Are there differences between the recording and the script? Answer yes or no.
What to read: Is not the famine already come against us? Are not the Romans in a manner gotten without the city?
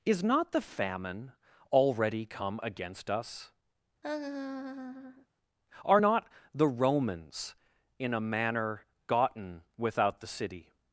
no